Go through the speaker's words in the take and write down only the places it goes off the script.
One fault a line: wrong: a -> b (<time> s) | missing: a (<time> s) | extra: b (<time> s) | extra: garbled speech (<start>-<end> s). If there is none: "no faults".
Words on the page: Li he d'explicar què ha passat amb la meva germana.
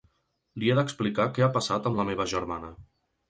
no faults